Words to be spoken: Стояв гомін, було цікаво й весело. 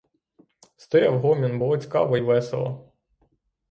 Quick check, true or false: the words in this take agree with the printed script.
true